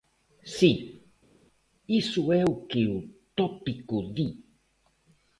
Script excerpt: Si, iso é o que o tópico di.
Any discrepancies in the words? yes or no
no